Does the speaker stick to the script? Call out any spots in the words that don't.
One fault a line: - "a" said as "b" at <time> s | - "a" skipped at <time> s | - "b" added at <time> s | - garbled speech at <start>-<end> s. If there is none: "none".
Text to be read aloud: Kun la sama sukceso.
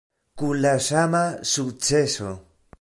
none